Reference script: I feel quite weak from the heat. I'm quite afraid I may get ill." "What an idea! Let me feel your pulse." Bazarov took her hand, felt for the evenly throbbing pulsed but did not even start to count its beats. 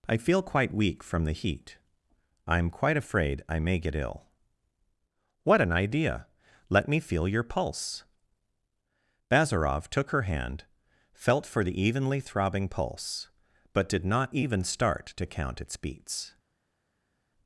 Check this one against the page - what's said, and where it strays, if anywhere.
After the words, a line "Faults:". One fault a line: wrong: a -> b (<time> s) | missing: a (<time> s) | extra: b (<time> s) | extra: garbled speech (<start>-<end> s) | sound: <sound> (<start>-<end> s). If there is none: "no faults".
I feel quite weak from the heat. I'm quite afraid I may get ill." "What an idea! Let me feel your pulse." Bazarov took her hand, felt for the evenly throbbing pulse but did not even start to count its beats.
Faults:
wrong: pulsed -> pulse (12.7 s)